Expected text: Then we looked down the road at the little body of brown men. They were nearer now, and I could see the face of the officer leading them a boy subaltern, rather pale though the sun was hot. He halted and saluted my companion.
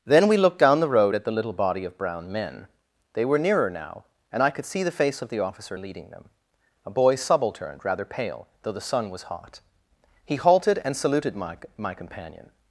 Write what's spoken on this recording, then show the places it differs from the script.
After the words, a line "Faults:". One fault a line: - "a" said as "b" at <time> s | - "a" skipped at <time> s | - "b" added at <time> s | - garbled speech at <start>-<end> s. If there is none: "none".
Then we looked down the road at the little body of brown men. They were nearer now, and I could see the face of the officer leading them a boy subaltern, rather pale though the sun was hot. He halted and saluted my my companion.
Faults:
- "my" added at 11.8 s